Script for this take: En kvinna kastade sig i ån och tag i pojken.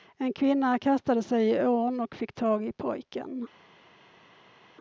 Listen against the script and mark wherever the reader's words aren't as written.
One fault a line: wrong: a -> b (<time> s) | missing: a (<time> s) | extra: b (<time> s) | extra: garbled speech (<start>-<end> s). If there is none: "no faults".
extra: fick (2.1 s)